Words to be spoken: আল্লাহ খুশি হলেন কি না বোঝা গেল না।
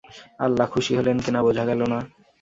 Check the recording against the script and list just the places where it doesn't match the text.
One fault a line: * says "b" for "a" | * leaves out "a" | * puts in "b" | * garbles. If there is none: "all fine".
all fine